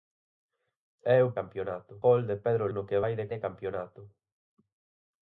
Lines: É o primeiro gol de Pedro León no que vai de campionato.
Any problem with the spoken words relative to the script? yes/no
yes